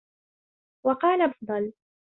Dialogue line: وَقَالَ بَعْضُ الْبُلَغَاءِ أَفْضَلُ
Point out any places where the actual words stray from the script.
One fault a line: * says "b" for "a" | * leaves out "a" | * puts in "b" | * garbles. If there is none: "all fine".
* leaves out "بَعْضُ الْبُلَغَاءِ"